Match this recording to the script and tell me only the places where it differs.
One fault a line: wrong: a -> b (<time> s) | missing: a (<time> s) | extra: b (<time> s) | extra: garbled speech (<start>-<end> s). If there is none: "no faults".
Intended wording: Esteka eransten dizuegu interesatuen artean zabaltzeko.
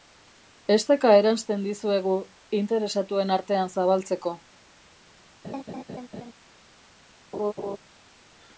no faults